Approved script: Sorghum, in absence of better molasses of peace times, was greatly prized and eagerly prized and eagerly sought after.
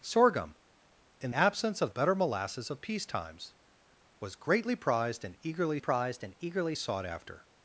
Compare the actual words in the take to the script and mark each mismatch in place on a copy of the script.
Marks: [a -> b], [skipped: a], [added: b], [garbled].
Sorghum, in absence of better molasses of peace times, was greatly prized and eagerly prized and eagerly sought after.